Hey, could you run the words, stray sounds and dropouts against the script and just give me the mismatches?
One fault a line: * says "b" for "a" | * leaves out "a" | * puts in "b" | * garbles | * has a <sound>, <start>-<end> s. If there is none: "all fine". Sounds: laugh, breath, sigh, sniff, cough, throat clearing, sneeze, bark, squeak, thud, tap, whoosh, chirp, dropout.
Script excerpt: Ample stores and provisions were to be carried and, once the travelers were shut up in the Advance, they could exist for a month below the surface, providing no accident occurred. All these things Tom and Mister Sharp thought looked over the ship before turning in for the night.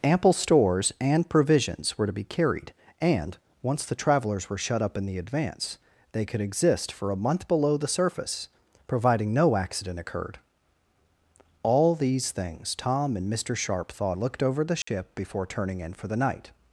* has a dropout, 14.8-14.9 s